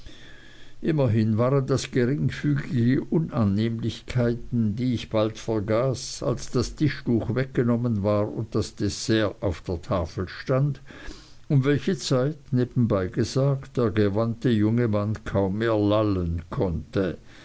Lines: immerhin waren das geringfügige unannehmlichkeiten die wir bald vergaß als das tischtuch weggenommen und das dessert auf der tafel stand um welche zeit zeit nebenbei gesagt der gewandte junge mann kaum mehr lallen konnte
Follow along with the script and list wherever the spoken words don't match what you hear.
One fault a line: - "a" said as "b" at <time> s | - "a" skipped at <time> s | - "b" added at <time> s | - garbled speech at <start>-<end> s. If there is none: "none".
- "wir" said as "ich" at 5.0 s
- "war" added at 8.0 s
- "zeit" skipped at 12.4 s